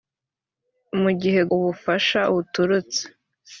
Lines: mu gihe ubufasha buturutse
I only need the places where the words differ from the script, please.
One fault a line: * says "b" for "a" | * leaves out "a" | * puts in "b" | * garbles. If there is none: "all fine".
all fine